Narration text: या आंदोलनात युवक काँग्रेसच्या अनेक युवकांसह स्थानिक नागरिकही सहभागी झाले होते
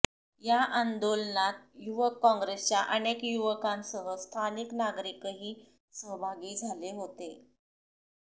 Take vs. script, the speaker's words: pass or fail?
pass